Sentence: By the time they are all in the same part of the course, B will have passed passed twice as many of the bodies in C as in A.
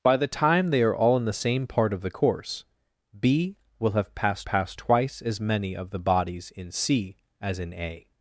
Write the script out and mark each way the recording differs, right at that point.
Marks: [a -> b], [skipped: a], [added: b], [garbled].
By the time they are all in the same part of the course, B will have passed passed twice as many of the bodies in C as in A.